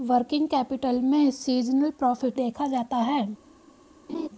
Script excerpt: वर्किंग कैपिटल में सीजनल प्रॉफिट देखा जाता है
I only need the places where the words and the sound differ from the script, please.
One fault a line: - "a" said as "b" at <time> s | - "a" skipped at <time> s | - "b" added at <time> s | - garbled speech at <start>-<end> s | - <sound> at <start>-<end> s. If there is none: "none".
- laugh at 4.1-4.3 s